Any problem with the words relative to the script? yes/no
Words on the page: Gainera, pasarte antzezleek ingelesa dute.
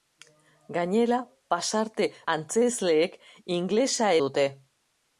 no